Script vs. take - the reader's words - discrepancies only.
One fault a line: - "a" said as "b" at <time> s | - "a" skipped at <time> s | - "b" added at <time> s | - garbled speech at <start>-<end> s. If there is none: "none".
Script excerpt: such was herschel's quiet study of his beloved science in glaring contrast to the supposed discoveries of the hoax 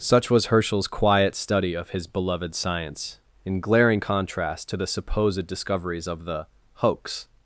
none